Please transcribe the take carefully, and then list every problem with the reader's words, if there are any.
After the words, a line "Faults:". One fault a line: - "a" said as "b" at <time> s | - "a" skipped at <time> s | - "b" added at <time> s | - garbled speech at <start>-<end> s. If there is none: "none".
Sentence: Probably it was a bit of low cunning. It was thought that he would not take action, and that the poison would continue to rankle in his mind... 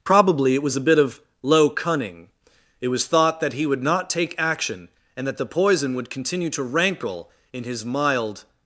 Probably it was a bit of low cunning. It was thought that he would not take action, and that the poison would continue to rankle in his mild...
Faults:
- "mind" said as "mild" at 7.8 s